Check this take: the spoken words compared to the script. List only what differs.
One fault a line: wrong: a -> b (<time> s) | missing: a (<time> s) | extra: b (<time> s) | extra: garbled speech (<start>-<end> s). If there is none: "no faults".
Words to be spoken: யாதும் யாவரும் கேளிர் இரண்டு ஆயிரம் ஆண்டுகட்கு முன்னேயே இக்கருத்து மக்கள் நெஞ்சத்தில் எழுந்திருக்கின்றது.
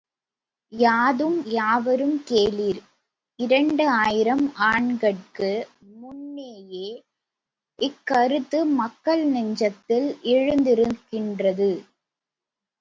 no faults